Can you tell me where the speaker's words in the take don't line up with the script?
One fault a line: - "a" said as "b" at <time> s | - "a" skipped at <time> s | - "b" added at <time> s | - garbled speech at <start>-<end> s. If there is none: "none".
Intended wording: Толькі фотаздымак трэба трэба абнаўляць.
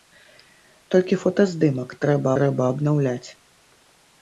none